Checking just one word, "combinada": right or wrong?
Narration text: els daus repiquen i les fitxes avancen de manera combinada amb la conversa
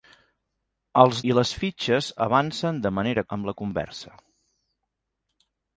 wrong